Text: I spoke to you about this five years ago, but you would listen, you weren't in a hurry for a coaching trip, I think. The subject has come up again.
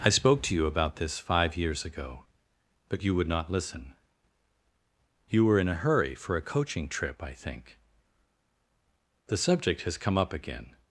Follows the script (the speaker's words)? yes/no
no